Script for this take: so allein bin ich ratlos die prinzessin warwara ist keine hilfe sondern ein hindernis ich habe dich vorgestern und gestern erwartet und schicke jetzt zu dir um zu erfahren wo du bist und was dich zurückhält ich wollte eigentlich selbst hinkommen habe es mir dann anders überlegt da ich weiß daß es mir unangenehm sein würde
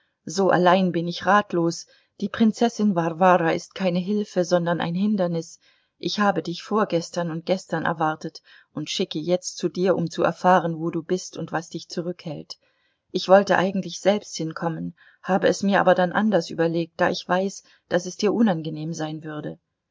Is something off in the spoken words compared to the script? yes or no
yes